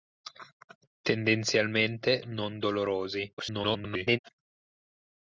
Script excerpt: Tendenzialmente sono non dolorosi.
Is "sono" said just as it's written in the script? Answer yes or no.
no